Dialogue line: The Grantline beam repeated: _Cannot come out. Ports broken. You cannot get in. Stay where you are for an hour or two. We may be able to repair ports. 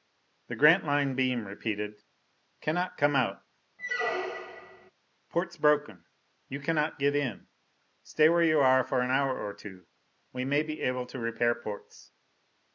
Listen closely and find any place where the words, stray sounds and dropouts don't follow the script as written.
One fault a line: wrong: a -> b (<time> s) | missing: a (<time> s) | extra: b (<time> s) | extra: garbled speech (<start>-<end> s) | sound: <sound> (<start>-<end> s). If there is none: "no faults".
sound: squeak (3.8-4.9 s)